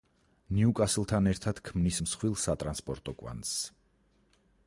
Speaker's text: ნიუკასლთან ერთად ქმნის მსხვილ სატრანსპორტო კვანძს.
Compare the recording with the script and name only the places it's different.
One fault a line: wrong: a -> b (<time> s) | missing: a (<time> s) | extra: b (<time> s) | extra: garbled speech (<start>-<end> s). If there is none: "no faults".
no faults